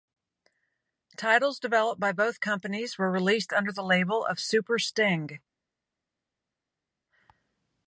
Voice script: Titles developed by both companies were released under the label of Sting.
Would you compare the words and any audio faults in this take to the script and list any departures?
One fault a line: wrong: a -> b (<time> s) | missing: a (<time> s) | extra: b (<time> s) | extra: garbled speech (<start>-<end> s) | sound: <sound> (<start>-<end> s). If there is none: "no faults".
extra: Super (4.4 s)